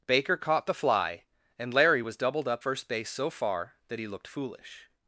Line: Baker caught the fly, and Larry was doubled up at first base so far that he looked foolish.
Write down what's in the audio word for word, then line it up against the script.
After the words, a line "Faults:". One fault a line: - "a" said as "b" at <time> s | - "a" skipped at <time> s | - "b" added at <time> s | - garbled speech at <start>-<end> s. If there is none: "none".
Baker caught the fly, and Larry was doubled up first base so far that he looked foolish.
Faults:
- "at" skipped at 2.6 s